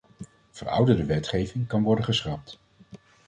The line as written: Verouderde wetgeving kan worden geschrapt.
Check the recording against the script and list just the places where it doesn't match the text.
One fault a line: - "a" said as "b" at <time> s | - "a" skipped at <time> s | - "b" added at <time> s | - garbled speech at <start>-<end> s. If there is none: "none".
none